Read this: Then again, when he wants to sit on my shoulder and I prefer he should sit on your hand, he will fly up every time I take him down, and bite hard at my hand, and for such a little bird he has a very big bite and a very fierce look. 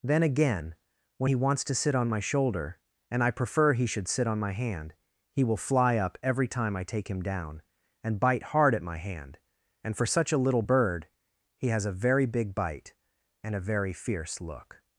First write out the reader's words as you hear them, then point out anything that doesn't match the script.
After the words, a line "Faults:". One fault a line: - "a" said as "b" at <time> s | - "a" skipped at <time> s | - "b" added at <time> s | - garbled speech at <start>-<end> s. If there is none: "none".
Then again, when he wants to sit on my shoulder and I prefer he should sit on my hand, he will fly up every time I take him down, and bite hard at my hand, and for such a little bird he has a very big bite and a very fierce look.
Faults:
- "your" said as "my" at 4.4 s